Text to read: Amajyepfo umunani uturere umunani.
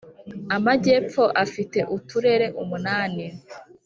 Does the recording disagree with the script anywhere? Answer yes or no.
yes